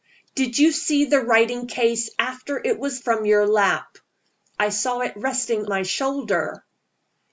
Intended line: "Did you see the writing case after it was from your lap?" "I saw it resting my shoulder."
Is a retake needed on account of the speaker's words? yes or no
no